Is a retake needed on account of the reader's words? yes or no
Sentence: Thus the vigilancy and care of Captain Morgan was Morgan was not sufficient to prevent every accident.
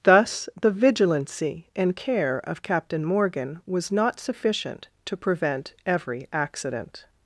yes